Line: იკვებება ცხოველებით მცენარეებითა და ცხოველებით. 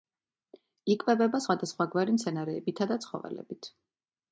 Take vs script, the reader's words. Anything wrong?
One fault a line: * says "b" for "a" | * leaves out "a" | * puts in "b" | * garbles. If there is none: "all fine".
* says "სხვადასხვაგვარი" for "ცხოველებით"